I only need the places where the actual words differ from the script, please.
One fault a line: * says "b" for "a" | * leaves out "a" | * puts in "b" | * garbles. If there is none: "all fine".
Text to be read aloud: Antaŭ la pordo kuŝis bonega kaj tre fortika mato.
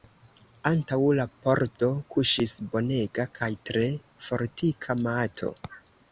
all fine